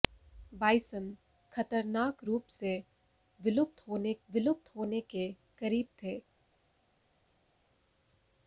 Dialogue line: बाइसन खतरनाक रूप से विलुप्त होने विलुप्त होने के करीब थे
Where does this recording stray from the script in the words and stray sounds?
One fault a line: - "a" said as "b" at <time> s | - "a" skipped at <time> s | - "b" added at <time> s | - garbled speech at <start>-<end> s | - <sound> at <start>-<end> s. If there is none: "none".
none